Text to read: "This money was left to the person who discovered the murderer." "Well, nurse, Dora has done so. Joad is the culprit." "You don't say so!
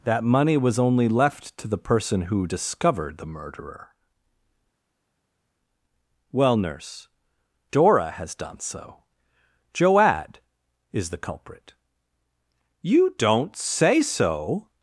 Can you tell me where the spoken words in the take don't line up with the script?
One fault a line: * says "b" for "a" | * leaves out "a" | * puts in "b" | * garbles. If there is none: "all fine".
* says "That" for "This"
* puts in "only"